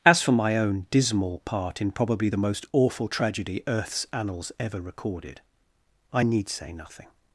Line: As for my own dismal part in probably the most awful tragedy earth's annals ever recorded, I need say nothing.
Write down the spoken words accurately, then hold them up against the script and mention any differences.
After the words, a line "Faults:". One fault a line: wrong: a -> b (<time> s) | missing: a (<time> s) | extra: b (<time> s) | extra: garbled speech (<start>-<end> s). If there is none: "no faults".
As for my own dismal part in probably the most awful tragedy earth's annals ever recorded, I need say nothing.
Faults:
no faults